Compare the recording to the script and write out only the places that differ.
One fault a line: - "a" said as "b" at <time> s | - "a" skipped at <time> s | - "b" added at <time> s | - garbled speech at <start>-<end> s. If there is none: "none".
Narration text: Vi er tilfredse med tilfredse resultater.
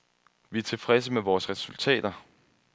- "tilfredse" said as "vores" at 1.2 s